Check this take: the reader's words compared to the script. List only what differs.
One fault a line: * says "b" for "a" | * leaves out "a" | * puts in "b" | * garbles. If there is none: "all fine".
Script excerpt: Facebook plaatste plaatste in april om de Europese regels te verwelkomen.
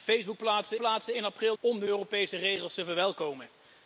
all fine